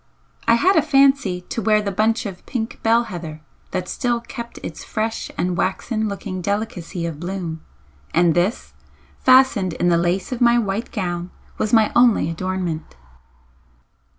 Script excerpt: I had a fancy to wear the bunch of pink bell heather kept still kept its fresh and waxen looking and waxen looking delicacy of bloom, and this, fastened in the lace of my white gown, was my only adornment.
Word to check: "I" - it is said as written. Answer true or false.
true